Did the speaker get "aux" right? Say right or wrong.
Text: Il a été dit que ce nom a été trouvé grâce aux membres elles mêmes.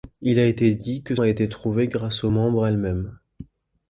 right